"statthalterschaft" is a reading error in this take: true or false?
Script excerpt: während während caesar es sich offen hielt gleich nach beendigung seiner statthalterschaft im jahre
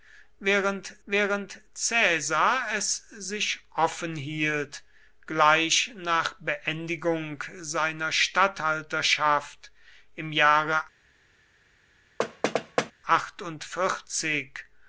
false